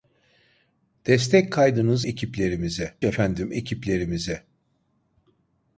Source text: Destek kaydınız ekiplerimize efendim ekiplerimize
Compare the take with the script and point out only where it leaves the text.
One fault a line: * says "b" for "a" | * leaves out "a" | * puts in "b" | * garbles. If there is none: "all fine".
all fine